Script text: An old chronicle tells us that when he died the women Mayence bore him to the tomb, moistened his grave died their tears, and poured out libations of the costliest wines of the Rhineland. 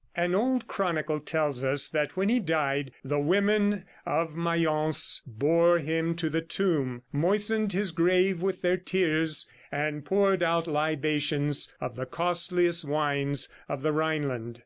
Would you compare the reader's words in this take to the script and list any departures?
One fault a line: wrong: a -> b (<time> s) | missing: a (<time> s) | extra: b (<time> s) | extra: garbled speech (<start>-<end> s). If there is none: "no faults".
extra: of (4.0 s)
wrong: died -> with (8.4 s)